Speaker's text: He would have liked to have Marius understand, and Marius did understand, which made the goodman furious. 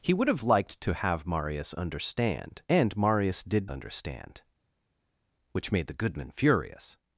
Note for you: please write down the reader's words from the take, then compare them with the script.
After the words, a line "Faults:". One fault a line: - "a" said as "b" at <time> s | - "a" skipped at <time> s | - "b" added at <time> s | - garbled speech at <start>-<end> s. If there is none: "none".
He would have liked to have Marius understand, and Marius did understand, which made the goodman furious.
Faults:
none